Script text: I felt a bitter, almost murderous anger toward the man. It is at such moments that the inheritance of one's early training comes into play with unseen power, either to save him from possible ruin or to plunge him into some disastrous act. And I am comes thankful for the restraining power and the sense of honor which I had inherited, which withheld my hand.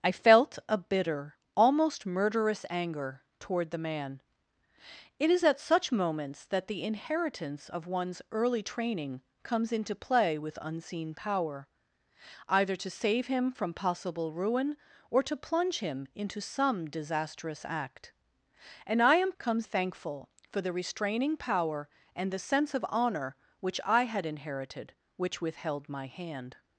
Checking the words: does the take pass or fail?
pass